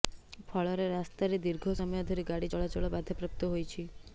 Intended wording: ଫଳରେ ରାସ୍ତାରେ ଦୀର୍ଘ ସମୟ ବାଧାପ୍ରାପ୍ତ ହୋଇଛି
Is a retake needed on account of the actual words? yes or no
yes